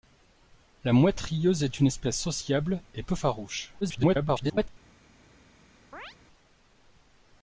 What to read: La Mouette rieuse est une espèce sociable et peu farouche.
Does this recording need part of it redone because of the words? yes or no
yes